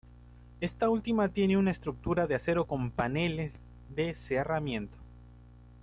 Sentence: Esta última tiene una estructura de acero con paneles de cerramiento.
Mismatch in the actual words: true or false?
false